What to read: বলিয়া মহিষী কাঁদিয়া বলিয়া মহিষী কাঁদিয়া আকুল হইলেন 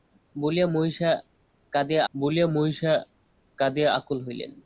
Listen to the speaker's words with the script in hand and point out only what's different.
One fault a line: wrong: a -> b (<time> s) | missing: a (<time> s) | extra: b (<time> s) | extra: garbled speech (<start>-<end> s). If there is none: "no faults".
no faults